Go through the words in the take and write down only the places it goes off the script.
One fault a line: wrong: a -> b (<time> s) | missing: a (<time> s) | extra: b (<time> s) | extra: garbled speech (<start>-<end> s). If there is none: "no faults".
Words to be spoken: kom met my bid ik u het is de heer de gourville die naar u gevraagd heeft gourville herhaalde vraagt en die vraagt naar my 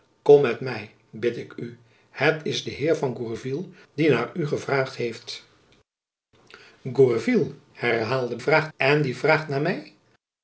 no faults